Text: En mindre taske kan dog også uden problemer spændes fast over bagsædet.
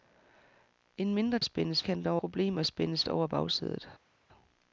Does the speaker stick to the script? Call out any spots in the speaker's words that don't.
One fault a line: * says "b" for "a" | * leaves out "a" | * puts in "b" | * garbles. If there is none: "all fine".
* says "spændes" for "taske"
* leaves out "også uden"
* leaves out "fast"